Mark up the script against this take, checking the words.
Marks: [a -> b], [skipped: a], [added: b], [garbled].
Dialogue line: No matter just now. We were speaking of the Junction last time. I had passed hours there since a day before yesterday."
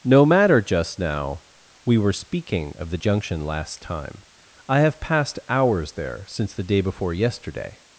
No matter just now. We were speaking of the Junction last time. I [had -> have] passed hours there since [a -> the] day before yesterday."